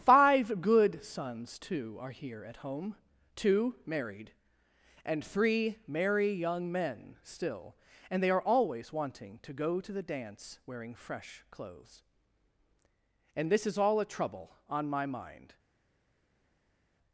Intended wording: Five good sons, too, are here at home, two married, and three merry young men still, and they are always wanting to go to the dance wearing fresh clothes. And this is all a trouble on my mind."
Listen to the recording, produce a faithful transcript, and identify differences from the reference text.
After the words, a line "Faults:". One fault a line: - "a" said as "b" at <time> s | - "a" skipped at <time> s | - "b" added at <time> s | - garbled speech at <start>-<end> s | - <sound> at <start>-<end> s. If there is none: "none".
Five good sons, too, are here at home, two married, and three merry young men still, and they are always wanting to go to the dance wearing fresh clothes. And this is all a trouble on my mind."
Faults:
none